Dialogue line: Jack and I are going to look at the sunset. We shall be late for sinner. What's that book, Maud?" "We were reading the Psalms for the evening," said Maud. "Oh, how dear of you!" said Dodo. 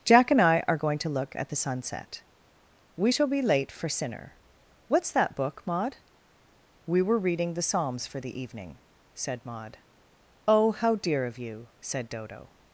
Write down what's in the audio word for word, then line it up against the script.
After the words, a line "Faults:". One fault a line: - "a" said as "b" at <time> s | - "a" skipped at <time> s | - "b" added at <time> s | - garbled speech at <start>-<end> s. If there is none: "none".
Jack and I are going to look at the sunset. We shall be late for sinner. What's that book, Maud?" "We were reading the Psalms for the evening," said Maud. "Oh, how dear of you!" said Dodo.
Faults:
none